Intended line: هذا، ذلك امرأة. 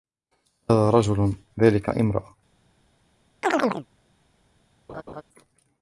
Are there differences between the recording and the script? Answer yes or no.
yes